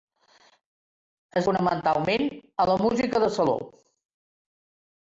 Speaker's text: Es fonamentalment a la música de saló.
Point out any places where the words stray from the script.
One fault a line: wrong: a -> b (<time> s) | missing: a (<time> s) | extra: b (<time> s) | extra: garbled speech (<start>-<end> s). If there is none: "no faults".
no faults